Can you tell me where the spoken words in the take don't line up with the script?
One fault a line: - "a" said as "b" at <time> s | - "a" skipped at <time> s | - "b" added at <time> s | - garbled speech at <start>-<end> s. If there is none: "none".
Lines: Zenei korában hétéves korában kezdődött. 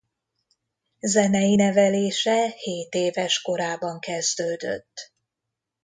- "korában" said as "nevelése" at 1.5 s